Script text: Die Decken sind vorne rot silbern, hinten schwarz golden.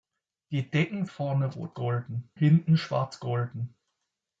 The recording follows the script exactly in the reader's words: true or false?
false